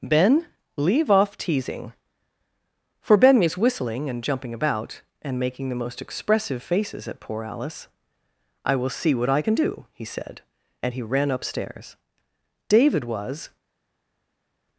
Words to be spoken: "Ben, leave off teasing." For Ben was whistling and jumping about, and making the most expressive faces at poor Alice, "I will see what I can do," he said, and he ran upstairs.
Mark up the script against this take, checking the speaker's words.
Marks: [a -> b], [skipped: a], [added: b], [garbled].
"Ben, leave off teasing." For Ben was whistling and jumping about, and making the most expressive faces at poor Alice, "I will see what I can do," he said, and he ran upstairs. [added: David was]